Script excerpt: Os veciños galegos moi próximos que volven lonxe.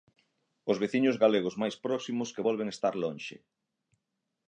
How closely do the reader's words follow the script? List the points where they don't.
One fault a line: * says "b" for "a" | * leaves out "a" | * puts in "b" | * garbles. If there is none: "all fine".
* says "máis" for "moi"
* puts in "estar"